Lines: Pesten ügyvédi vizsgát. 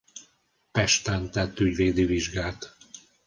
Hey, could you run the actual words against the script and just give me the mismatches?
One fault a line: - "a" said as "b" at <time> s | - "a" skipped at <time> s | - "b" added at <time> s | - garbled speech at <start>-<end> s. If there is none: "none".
- "tett" added at 1.3 s